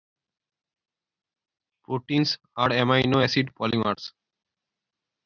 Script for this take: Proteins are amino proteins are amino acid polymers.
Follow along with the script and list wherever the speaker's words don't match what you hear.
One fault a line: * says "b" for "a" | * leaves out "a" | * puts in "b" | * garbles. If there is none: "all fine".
* leaves out "proteins are amino"